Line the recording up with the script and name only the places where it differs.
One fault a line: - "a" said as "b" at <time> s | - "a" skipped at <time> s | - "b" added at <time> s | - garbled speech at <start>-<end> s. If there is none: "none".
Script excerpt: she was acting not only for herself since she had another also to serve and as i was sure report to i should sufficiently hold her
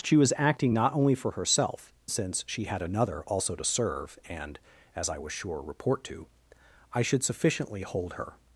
none